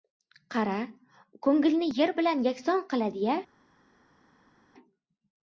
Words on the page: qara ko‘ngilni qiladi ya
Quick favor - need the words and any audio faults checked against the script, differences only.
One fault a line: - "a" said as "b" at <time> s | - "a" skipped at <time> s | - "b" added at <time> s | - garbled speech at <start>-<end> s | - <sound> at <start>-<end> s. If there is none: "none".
- "yer bilan yakson" added at 2.0 s